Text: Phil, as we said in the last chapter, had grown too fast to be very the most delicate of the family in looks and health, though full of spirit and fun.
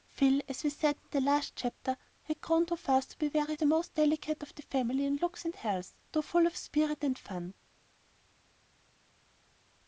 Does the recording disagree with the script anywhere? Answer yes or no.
no